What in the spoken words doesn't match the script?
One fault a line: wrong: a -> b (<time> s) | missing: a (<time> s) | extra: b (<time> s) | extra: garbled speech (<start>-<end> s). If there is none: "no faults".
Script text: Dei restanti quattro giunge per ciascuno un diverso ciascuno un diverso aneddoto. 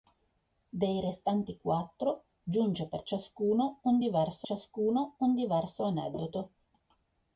no faults